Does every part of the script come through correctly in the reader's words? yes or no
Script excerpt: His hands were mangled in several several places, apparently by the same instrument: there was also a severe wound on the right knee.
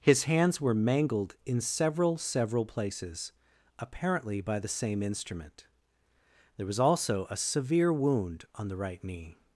yes